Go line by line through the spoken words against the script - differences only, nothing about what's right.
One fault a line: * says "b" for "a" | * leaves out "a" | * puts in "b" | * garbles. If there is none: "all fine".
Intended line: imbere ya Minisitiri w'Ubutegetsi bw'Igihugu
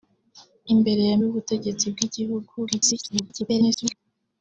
* leaves out "Minisitiri"
* garbles